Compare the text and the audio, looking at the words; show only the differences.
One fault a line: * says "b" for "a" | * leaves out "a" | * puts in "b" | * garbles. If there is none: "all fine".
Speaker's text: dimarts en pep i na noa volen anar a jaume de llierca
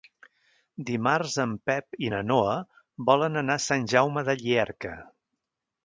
* puts in "sant"